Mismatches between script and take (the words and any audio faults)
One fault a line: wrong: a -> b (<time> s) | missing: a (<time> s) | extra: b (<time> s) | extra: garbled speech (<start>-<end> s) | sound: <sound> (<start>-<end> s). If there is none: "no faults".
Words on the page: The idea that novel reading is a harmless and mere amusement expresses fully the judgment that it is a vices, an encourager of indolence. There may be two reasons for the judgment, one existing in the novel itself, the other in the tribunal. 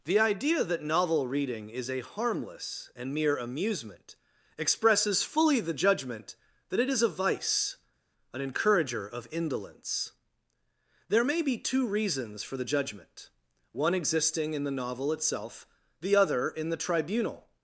wrong: vices -> vice (7.1 s)